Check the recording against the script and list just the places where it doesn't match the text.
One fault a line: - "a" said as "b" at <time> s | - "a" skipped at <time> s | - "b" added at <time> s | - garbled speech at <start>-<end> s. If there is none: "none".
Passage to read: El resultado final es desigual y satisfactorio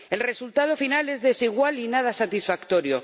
- "nada" added at 1.9 s